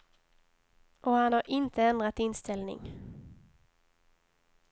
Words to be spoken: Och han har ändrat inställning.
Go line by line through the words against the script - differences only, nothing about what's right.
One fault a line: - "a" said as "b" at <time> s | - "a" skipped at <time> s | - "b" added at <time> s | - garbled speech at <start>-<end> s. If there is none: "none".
- "inte" added at 1.5 s